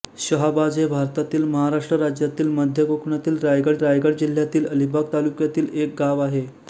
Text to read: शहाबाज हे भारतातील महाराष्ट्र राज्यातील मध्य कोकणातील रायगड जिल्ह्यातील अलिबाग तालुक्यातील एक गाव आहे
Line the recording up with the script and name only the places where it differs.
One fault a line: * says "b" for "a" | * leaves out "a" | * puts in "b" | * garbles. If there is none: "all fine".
* puts in "रायगड"